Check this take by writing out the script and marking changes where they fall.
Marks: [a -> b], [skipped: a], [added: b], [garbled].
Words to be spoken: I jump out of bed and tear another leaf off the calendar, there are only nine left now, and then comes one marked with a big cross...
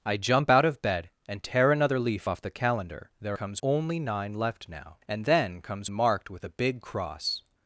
I jump out of bed and tear another leaf off the calendar, there [are -> comes] only nine left now, and then comes [skipped: one] marked with a big cross...